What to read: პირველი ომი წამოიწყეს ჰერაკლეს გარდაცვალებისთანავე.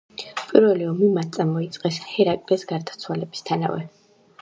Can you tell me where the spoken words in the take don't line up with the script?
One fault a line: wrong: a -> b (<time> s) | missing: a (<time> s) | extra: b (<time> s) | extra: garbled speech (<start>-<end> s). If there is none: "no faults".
extra: მათ (1.2 s)